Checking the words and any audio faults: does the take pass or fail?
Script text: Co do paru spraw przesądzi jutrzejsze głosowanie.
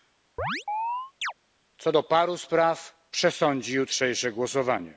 fail